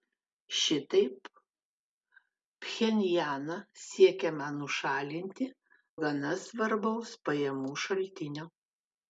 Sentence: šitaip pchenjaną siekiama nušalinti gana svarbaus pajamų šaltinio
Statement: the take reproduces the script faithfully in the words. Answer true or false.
true